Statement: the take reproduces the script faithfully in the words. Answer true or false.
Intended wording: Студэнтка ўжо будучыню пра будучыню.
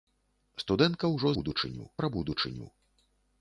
true